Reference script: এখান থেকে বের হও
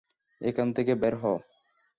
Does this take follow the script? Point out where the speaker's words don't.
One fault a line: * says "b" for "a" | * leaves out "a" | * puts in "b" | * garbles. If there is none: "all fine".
all fine